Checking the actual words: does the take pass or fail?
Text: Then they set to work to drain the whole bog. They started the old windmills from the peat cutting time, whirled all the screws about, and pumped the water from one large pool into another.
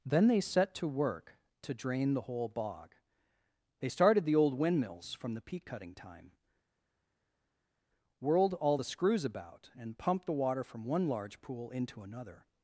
pass